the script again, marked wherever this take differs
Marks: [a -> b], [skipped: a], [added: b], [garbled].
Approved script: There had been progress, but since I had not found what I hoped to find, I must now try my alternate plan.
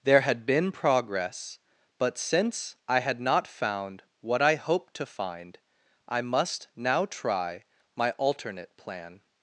There had been progress, but since I had not found what I hoped to find, I must now try my alternate plan.